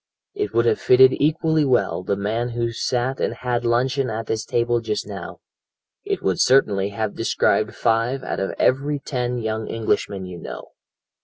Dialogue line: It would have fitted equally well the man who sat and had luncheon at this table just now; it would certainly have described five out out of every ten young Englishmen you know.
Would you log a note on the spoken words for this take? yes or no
yes